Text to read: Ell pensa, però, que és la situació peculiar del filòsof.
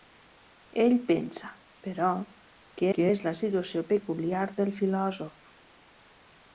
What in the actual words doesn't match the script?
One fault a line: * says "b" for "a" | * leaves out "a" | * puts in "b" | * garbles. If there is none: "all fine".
* puts in "que"